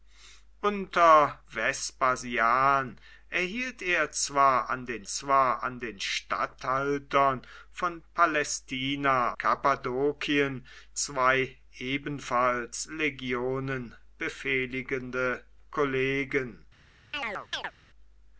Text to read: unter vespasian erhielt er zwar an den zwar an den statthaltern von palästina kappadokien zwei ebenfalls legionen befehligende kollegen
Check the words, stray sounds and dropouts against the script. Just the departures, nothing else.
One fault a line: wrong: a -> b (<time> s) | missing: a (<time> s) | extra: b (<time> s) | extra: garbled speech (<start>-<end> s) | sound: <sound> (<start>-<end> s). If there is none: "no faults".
sound: chirp (17.1-17.7 s)